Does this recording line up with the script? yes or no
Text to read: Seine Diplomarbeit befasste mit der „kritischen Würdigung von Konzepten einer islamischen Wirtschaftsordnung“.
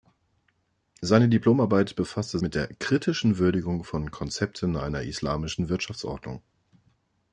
yes